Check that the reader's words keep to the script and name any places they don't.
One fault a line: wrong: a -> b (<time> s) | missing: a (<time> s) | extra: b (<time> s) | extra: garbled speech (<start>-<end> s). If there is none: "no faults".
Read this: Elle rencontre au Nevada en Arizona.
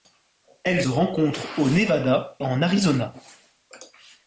no faults